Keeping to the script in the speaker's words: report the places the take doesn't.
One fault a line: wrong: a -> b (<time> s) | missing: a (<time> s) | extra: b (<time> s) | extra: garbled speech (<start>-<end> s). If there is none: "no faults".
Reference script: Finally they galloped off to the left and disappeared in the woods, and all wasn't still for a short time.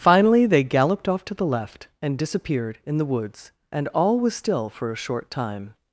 wrong: wasn't -> was (4.2 s)